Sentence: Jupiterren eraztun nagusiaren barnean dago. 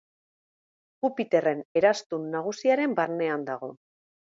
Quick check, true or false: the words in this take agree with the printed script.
true